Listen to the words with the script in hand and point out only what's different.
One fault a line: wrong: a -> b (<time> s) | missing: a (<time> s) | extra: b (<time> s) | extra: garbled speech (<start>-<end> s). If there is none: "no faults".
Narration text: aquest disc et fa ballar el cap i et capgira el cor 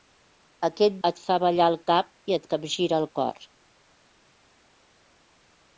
missing: disc (0.9 s)